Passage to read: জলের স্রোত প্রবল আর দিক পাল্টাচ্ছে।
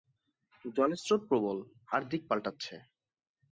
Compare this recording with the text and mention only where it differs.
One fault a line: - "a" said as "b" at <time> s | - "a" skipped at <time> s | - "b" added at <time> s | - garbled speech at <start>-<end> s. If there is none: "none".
none